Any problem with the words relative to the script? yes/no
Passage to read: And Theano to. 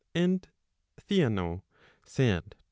yes